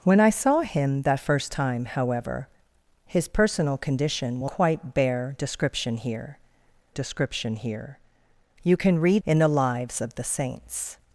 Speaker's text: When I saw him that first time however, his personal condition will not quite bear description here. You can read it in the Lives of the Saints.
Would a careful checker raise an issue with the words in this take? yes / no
yes